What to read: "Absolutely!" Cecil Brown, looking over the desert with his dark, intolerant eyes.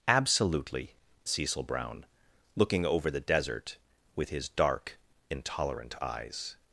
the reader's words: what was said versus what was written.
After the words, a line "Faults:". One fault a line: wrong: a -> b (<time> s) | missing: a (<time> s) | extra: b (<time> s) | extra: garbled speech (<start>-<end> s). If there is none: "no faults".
"Absolutely!" Cecil Brown, looking over the desert with his dark, intolerant eyes.
Faults:
no faults